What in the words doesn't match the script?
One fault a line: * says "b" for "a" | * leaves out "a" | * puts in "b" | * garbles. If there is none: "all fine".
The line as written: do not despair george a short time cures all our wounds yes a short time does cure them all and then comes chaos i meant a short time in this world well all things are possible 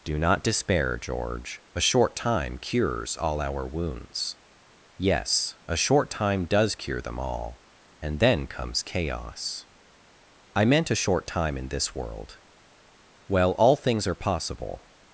all fine